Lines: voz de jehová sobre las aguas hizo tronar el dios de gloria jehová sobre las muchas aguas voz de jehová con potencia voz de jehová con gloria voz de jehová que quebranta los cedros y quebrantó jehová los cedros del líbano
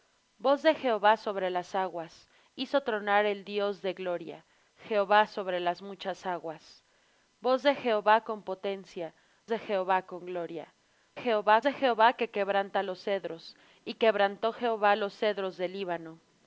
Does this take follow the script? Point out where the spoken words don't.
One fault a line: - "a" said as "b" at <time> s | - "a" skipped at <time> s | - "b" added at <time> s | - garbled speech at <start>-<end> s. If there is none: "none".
- "voz" skipped at 9.1 s
- "voz" said as "jehová" at 11.2 s